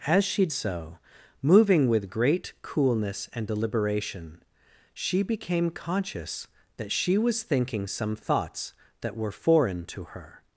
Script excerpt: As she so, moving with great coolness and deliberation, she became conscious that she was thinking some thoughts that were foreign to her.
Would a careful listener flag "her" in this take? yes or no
no